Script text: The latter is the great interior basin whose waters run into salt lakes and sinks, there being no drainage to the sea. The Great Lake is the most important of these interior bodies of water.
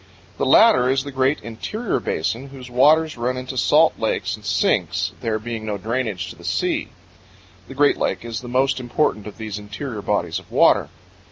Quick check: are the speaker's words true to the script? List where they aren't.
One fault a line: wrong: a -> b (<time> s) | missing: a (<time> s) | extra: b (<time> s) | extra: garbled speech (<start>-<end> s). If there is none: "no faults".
no faults